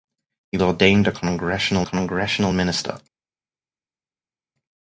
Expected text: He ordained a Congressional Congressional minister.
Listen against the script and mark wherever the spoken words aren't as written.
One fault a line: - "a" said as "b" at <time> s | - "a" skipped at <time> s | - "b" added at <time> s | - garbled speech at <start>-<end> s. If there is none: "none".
none